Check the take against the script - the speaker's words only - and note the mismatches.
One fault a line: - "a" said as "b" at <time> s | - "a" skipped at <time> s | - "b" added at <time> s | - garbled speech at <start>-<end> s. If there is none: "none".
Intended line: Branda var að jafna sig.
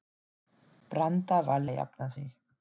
none